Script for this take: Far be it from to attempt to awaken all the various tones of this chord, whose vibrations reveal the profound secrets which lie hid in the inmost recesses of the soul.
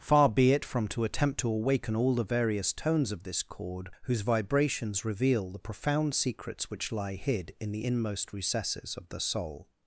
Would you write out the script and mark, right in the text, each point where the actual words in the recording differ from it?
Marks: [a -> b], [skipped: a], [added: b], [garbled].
Far be it from to attempt to awaken all the various tones of this chord, whose vibrations reveal the profound secrets which lie hid in the inmost recesses of the soul.